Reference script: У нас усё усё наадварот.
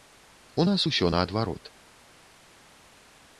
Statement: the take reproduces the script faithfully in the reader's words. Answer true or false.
false